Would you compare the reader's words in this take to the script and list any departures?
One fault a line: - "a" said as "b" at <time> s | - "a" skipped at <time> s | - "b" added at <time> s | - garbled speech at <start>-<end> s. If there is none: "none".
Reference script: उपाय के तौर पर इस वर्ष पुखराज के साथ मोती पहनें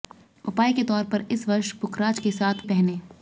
- "मोती" skipped at 2.7 s